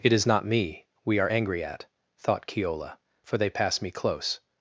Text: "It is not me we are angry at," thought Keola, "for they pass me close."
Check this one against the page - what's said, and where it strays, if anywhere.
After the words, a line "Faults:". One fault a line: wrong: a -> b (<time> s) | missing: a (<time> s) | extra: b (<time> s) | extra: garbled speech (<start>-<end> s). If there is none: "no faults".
"It is not me we are angry at," thought Keola, "for they pass me close."
Faults:
no faults